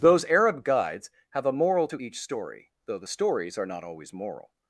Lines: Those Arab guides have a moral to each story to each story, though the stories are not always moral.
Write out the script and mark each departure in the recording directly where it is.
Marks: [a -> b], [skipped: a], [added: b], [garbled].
Those Arab guides have a moral to each story [skipped: to each story,] though the stories are not always moral.